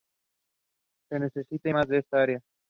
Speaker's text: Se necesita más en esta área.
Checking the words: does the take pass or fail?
pass